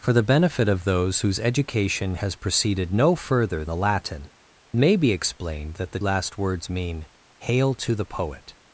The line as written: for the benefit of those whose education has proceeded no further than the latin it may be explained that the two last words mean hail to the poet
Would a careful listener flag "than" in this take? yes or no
yes